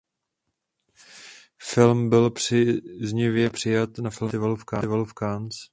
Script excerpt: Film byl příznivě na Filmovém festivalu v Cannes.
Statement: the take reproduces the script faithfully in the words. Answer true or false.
false